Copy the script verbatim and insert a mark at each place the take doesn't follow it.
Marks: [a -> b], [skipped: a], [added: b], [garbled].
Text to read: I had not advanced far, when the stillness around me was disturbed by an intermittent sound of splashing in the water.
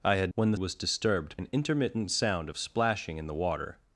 I had [skipped: not advanced far,] when the [skipped: stillness around me] was disturbed [skipped: by] an intermittent sound of splashing in the water.